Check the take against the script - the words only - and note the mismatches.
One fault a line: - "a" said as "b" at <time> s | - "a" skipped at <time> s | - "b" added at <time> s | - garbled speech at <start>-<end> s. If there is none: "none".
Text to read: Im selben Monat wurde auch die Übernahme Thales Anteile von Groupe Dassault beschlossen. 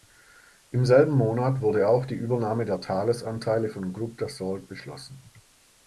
- "der" added at 2.6 s